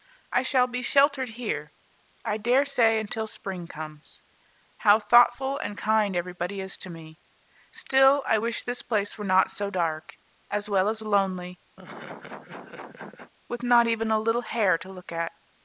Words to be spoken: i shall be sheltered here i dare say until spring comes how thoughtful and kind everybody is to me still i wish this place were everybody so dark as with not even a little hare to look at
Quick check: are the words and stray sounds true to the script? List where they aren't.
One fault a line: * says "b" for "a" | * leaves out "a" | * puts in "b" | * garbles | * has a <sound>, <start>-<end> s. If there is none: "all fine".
* says "not" for "everybody"
* puts in "well as lonely"
* has a laugh, 11.8-13.3 s